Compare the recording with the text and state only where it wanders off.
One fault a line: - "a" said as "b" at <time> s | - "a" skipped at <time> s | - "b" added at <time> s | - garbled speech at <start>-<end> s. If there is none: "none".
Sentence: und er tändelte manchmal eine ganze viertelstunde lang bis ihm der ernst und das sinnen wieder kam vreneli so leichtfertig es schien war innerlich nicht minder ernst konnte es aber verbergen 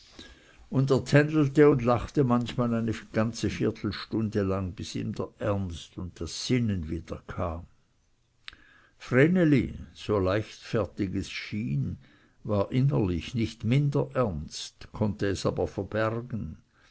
- "und lachte" added at 1.7 s